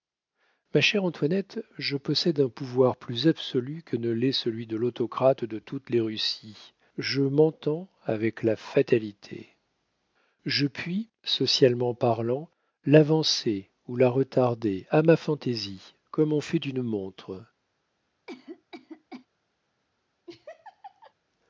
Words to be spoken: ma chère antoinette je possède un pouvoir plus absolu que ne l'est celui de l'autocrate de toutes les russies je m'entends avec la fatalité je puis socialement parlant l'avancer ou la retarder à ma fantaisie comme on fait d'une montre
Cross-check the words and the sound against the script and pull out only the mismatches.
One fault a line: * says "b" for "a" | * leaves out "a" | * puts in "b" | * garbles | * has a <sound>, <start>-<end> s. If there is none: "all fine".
* has a cough, 18.3-19.3 s
* has a laugh, 20.3-21.1 s